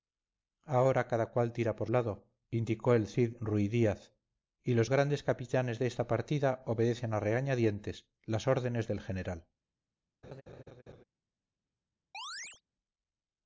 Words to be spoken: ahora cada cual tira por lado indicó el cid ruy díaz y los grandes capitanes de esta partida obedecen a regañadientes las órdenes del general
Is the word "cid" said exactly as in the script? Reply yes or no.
yes